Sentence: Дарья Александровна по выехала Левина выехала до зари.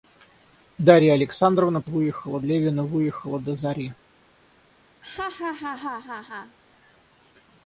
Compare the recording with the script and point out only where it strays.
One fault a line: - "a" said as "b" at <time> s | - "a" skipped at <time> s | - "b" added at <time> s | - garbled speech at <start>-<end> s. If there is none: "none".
none